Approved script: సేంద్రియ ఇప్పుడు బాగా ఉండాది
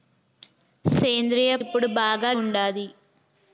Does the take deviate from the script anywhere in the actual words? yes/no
no